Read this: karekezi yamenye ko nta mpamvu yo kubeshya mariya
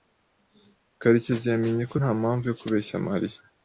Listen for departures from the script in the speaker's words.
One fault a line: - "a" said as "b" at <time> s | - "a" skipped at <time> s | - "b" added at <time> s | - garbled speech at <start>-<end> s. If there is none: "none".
none